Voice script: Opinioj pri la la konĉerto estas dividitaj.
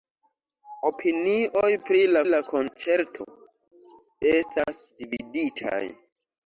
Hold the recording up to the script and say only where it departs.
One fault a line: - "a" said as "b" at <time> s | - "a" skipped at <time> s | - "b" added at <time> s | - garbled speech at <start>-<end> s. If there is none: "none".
none